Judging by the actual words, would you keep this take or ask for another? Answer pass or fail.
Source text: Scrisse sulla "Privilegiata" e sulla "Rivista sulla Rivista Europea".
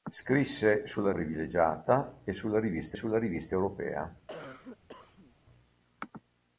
pass